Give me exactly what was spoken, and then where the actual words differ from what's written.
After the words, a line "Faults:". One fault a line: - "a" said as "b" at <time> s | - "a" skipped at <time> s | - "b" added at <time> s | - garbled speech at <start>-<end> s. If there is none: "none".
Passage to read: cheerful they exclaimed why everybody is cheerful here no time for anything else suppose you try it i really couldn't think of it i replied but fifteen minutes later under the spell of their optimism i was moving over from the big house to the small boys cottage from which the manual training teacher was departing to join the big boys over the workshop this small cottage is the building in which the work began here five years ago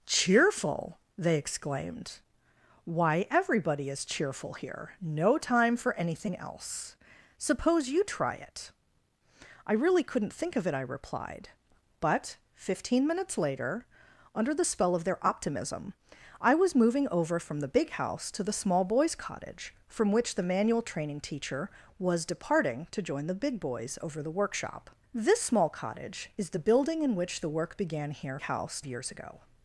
cheerful they exclaimed why everybody is cheerful here no time for anything else suppose you try it i really couldn't think of it i replied but fifteen minutes later under the spell of their optimism i was moving over from the big house to the small boys cottage from which the manual training teacher was departing to join the big boys over the workshop this small cottage is the building in which the work began here house years ago
Faults:
- "five" said as "house" at 28.4 s